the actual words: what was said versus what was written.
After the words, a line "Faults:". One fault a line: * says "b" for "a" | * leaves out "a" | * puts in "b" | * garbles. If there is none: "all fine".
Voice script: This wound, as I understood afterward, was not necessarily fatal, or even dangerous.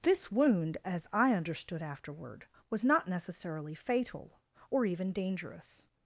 This wound, as I understood afterward, was not necessarily fatal, or even dangerous.
Faults:
all fine